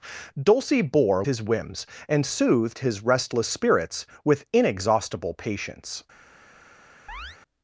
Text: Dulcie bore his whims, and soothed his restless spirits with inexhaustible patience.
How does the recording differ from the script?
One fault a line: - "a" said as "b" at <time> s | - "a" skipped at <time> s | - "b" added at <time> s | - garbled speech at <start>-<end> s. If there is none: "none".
none